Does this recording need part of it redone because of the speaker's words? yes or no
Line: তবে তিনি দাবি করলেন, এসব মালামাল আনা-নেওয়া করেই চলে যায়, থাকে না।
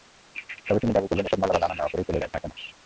no